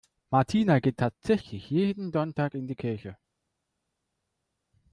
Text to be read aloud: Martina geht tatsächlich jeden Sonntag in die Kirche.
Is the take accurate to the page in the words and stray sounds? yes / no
yes